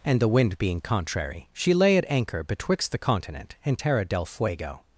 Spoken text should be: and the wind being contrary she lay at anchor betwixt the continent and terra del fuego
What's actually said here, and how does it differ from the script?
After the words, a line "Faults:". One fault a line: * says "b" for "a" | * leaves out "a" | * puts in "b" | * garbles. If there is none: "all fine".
and the wind being contrary she lay at anchor betwixt the continent and terra del fuego
Faults:
all fine